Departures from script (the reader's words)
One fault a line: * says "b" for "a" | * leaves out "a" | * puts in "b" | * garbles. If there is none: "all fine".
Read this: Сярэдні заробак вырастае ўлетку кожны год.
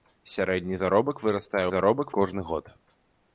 * says "заробак" for "ўлетку"